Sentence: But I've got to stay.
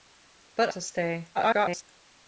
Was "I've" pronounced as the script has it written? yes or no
no